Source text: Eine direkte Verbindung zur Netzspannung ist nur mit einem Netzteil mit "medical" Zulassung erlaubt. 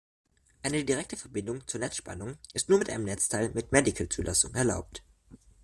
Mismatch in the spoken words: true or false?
false